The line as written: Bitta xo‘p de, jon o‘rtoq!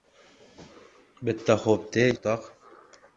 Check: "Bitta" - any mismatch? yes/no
no